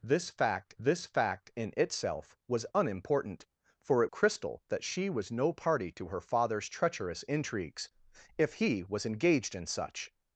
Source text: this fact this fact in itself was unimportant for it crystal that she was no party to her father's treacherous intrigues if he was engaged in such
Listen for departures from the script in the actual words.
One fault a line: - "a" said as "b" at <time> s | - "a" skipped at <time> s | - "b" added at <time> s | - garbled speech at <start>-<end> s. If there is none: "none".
none